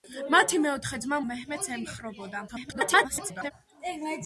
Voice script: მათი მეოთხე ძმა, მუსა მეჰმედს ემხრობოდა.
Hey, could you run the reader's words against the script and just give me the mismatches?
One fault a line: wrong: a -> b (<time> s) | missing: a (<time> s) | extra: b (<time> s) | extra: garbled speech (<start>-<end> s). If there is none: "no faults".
missing: მუსა (1.2 s)
extra: garbled speech (2.5-3.5 s)